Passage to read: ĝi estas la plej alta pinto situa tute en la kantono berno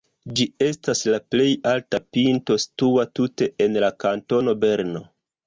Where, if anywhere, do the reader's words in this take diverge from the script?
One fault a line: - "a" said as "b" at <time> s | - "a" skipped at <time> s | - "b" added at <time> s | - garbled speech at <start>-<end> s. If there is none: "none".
none